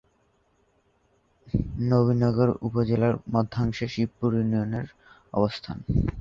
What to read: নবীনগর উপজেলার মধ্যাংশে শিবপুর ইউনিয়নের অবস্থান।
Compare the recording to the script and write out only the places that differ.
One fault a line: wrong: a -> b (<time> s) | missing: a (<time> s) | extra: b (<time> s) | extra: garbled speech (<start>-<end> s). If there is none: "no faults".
no faults